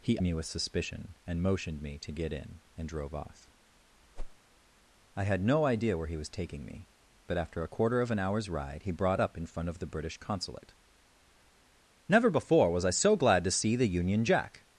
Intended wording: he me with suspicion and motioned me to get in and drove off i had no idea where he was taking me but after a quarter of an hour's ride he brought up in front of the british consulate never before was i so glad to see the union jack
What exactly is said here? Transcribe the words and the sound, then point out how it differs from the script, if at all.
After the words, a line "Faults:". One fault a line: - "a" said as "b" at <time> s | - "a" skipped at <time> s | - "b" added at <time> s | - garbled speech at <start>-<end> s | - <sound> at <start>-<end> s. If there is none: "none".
he me with suspicion and motioned me to get in and drove off i had no idea where he was taking me but after a quarter of an hour's ride he brought up in front of the british consulate never before was i so glad to see the union jack
Faults:
- whoosh at 4.2-4.4 s